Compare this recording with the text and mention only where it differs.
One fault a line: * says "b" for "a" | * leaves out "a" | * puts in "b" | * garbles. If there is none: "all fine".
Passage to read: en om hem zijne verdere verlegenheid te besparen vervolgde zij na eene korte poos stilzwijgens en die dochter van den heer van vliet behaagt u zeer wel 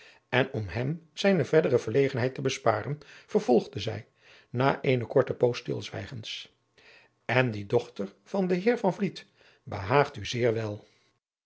all fine